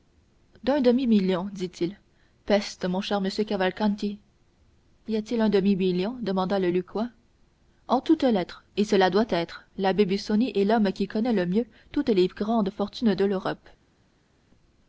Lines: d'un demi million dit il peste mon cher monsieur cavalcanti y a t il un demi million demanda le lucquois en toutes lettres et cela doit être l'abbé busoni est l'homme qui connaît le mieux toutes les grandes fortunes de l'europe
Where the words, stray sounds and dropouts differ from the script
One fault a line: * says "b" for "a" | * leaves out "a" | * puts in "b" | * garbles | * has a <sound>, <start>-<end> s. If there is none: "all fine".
all fine